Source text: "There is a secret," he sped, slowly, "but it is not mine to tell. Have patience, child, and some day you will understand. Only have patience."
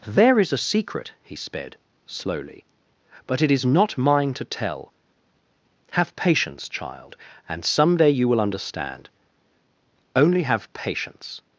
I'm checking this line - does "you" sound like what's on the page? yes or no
yes